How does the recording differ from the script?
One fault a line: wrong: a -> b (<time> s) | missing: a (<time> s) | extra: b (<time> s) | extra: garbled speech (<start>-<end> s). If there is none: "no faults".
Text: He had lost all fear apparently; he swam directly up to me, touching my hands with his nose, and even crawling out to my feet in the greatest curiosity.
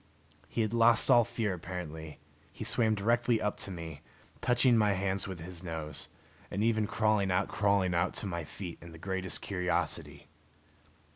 extra: crawling out (7.5 s)